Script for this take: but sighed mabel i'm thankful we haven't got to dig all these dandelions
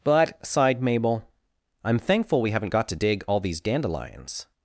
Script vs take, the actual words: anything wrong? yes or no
no